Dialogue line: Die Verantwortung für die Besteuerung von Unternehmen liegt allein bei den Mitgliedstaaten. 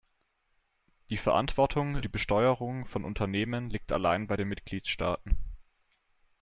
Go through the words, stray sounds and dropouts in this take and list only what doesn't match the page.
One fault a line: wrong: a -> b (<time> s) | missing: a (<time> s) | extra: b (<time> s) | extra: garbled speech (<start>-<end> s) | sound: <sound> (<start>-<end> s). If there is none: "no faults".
missing: für (2.0 s)